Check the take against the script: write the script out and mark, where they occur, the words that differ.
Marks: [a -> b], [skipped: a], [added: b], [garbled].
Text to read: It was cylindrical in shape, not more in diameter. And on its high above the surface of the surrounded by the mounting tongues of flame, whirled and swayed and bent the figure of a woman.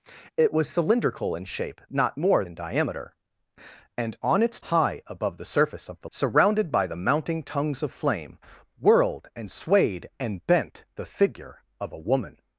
It was cylindrical in shape, not more in diameter. And on its high above the surface of the surrounded by the mounting tongues of flame, whirled and swayed and bent the figure of a woman.